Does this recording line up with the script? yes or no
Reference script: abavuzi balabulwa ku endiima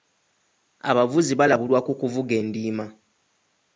no